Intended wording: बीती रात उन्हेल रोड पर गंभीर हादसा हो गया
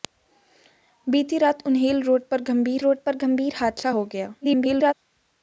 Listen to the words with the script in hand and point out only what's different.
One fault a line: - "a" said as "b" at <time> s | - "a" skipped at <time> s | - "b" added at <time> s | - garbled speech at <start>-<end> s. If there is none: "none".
- "रोड पर गंभीर" added at 2.8 s
- garbled speech at 4.4-4.9 s